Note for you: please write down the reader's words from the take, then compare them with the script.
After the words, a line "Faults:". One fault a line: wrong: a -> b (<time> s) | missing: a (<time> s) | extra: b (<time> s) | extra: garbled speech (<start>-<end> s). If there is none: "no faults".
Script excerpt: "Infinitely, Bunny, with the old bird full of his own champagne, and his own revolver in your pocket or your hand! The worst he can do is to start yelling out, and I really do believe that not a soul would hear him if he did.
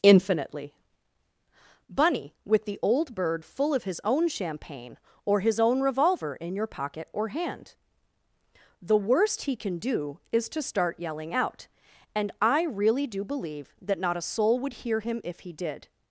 "Infinitely, Bunny, with the old bird full of his own champagne, or his own revolver in your pocket or hand! The worst he can do is to start yelling out, and I really do believe that not a soul would hear him if he did.
Faults:
wrong: and -> or (5.2 s)
missing: your (7.3 s)